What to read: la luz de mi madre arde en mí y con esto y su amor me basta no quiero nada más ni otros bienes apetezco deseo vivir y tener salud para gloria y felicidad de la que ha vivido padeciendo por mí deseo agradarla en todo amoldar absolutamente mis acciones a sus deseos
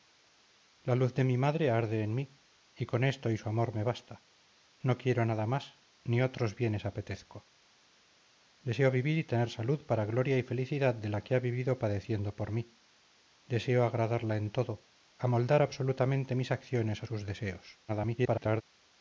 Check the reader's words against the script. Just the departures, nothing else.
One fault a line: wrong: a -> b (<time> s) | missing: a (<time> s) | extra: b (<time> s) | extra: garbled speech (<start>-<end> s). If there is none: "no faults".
extra: garbled speech (17.9-18.6 s)